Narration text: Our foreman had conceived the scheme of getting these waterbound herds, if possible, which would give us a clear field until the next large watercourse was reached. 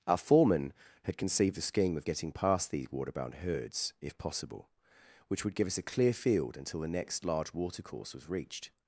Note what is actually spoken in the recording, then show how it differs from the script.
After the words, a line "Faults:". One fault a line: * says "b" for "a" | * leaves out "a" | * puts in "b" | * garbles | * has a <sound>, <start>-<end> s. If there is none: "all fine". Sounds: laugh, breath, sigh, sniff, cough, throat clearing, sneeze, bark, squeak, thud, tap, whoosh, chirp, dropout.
Our foreman had conceived the scheme of getting past these waterbound herds, if possible, which would give us a clear field until the next large watercourse was reached.
Faults:
* puts in "past"